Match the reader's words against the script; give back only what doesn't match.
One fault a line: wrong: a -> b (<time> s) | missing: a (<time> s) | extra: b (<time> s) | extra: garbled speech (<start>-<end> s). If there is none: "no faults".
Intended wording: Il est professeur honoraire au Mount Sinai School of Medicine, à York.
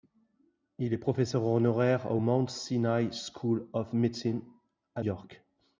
no faults